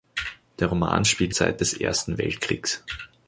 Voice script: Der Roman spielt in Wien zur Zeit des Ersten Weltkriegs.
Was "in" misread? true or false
true